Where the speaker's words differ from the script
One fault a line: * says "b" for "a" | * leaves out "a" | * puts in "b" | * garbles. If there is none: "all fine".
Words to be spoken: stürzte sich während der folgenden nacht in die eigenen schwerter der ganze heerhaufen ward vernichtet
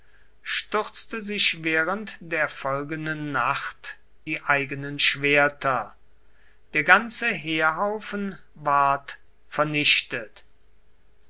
* leaves out "in"